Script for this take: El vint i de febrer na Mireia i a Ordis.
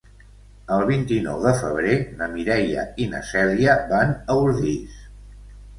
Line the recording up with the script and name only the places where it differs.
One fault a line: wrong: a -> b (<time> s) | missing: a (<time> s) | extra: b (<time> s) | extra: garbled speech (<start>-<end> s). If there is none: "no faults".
extra: nou (1.2 s)
extra: na Cèlia van (3.1 s)